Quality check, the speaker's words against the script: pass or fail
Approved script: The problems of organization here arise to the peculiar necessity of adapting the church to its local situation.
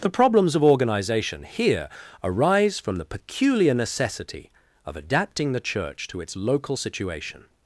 fail